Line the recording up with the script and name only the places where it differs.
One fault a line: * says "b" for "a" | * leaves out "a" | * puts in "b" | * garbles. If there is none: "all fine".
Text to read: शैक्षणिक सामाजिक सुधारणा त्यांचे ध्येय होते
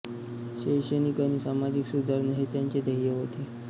* puts in "आणि"
* puts in "हे"